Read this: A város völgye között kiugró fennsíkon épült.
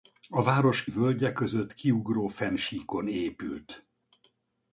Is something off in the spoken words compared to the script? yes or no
no